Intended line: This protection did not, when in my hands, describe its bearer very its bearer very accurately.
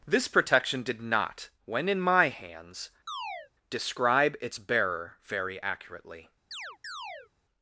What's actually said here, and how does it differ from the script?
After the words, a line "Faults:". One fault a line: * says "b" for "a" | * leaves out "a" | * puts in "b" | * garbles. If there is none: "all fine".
This protection did not, when in my hands, describe its bearer very accurately.
Faults:
* leaves out "its bearer very"